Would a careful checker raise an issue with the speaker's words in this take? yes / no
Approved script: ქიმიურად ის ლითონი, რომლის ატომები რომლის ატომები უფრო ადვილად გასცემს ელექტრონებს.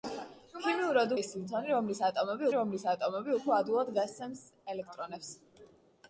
no